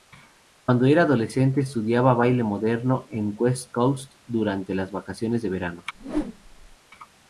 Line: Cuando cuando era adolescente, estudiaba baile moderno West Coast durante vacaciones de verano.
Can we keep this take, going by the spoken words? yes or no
no